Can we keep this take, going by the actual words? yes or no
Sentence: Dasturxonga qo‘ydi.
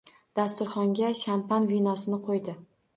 no